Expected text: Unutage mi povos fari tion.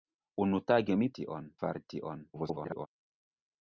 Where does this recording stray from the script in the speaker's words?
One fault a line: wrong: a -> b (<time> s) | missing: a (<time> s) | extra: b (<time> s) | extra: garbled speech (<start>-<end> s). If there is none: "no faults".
wrong: povos -> tion (1.2 s)
extra: garbled speech (2.3-2.9 s)